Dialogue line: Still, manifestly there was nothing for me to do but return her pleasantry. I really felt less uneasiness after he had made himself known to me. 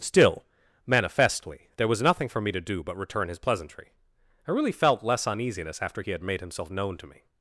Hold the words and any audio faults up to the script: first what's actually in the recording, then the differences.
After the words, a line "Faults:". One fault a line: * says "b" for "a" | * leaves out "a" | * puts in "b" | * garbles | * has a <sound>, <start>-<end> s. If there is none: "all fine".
Still, manifestly there was nothing for me to do but return his pleasantry. I really felt less uneasiness after he had made himself known to me.
Faults:
* says "his" for "her"